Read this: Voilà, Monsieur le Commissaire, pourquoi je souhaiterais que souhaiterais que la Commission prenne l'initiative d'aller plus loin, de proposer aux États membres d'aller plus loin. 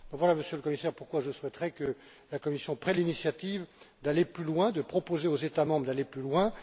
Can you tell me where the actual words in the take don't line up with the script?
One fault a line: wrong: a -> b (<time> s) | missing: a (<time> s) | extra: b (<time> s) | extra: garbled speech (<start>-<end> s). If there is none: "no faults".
missing: souhaiterais que (2.0 s)